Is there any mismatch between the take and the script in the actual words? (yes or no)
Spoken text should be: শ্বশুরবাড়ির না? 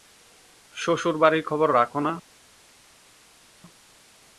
yes